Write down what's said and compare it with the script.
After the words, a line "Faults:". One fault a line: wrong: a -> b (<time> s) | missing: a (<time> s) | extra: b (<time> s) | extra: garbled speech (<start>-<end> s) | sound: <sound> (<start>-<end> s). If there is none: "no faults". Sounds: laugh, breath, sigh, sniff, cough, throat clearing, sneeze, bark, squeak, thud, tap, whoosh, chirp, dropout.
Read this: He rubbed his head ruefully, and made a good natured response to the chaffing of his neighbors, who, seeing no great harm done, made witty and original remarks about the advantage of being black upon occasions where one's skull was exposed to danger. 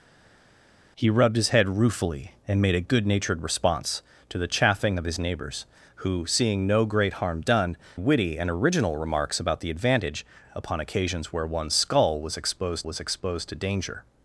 He rubbed his head ruefully, and made a good natured response to the chaffing of his neighbors, who, seeing no great harm done, witty and original remarks about the advantage upon occasions where one's skull was exposed was exposed to danger.
Faults:
missing: made (7.8 s)
missing: of being black (10.2 s)
extra: was exposed (12.8 s)